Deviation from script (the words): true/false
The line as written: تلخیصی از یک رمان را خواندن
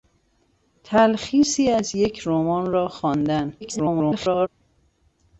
true